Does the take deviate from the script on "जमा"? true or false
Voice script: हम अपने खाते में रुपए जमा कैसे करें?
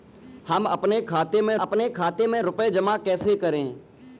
false